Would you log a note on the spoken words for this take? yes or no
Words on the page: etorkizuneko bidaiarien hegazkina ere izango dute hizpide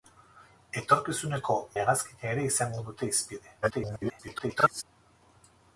yes